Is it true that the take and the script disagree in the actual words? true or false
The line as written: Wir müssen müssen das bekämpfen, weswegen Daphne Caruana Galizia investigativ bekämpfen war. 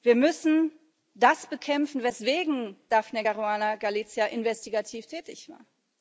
true